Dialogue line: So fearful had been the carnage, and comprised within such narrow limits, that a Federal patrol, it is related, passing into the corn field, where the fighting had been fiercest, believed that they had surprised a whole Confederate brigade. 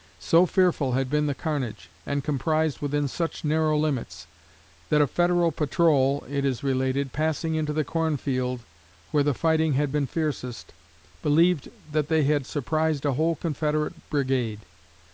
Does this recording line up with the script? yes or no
yes